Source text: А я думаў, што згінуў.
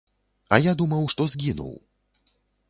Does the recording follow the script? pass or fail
pass